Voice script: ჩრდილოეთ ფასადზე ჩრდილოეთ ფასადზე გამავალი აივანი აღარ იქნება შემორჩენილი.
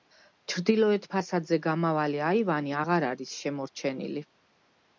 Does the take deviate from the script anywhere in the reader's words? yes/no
yes